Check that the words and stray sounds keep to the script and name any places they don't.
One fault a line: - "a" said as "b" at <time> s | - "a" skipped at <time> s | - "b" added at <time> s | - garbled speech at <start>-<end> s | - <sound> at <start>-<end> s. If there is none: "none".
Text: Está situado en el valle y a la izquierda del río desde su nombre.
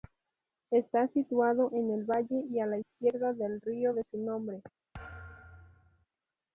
- "desde" said as "de" at 3.9 s
- thud at 4.9-6.1 s